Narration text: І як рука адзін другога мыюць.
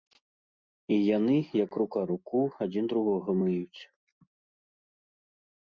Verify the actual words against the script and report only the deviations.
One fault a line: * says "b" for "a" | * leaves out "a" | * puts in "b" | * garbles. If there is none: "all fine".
* puts in "яны"
* puts in "руку"